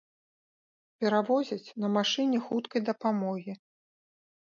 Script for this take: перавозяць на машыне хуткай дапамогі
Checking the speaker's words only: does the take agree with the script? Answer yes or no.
yes